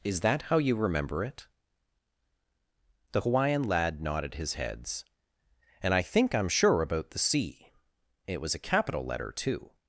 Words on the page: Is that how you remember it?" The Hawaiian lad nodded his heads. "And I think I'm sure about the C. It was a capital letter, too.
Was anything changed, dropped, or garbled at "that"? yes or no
no